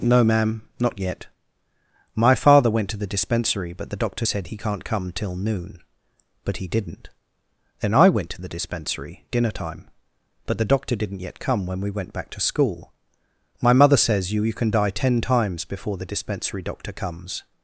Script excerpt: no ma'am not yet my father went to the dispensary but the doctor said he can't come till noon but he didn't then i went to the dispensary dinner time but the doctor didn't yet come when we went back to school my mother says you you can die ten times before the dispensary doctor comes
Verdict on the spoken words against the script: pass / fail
pass